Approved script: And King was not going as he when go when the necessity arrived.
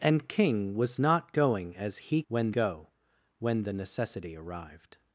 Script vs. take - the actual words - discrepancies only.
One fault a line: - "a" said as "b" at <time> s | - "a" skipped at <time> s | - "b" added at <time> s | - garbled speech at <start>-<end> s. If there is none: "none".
none